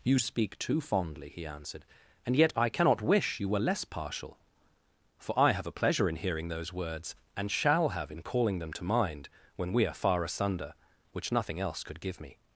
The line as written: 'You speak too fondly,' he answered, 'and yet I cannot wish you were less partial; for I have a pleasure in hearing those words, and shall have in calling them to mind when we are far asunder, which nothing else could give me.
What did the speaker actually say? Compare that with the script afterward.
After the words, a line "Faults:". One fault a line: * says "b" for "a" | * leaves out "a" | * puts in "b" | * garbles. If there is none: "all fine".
'You speak too fondly,' he answered, 'and yet I cannot wish you were less partial; for I have a pleasure in hearing those words, and shall have in calling them to mind when we are far asunder, which nothing else could give me.
Faults:
all fine